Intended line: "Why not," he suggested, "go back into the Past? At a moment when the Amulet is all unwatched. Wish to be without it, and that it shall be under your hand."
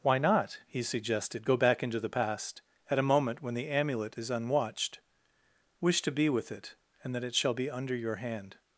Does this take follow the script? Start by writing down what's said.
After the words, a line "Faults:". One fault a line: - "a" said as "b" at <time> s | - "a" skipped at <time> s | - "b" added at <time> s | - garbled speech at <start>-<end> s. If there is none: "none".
"Why not," he suggested, "go back into the Past? At a moment when the Amulet is unwatched. Wish to be with it, and that it shall be under your hand."
Faults:
- "all" skipped at 4.3 s
- "without" said as "with" at 6.3 s